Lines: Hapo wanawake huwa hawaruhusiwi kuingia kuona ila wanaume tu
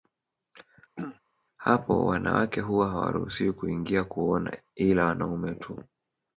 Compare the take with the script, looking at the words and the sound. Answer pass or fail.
fail